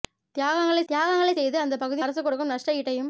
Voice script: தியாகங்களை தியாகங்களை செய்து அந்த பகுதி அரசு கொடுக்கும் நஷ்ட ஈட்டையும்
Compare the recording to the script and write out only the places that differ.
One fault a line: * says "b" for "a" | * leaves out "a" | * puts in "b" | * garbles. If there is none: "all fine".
all fine